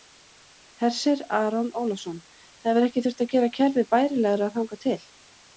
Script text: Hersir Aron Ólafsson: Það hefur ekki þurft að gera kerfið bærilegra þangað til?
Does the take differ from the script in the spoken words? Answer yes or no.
no